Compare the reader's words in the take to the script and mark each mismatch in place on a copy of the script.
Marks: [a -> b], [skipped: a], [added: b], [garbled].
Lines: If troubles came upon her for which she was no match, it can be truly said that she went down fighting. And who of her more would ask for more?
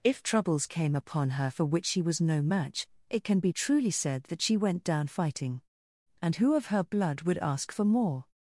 If troubles came upon her for which she was no match, it can be truly said that she went down fighting. And who of her [more -> blood] would ask for more?